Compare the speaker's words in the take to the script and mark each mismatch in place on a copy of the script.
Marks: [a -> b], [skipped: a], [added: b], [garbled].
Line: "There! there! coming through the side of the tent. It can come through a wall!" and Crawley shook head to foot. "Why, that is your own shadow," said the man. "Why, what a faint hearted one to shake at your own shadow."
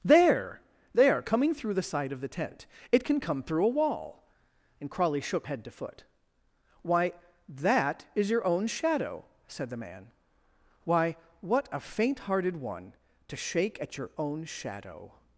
"There! there! coming through the side of the tent. It can come through a wall!" and Crawley shook head to foot. "Why, that is your own shadow," said the man. "Why, what a faint hearted one to shake at your own shadow."